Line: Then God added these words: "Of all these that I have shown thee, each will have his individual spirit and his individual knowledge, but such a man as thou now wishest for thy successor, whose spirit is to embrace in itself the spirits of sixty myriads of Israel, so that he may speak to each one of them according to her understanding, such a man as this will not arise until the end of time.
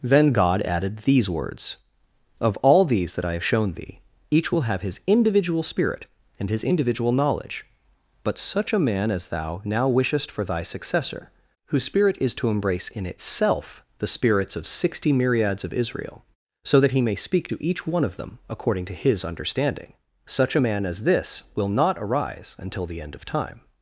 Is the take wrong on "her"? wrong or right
wrong